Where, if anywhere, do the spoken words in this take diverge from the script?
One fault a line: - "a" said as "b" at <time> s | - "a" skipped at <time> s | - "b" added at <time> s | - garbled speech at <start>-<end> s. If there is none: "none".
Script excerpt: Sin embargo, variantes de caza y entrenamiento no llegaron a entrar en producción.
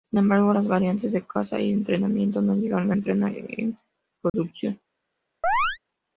- "las" added at 0.5 s